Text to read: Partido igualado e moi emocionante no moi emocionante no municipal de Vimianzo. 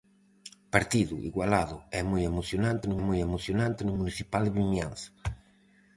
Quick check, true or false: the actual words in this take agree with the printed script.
true